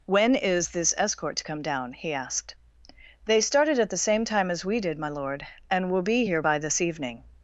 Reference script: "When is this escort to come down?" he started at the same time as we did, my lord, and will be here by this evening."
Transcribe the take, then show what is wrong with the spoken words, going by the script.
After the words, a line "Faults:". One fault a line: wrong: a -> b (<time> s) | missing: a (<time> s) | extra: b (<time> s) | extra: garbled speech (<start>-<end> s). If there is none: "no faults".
"When is this escort to come down?" he asked. "They started at the same time as we did, my lord, and will be here by this evening."
Faults:
extra: asked They (2.1 s)